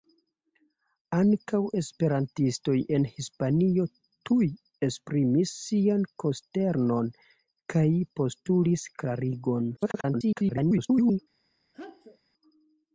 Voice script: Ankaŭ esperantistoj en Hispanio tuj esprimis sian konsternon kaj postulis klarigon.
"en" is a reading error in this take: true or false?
false